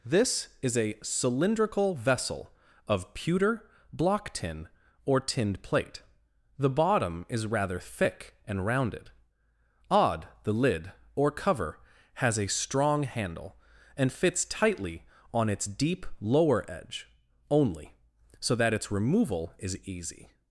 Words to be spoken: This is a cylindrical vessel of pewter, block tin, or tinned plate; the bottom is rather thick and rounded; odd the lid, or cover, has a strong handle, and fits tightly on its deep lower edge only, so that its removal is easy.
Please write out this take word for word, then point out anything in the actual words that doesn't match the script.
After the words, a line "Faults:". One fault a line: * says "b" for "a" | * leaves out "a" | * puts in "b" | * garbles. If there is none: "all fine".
This is a cylindrical vessel of pewter, block tin, or tinned plate; the bottom is rather thick and rounded; odd the lid, or cover, has a strong handle, and fits tightly on its deep lower edge only, so that its removal is easy.
Faults:
all fine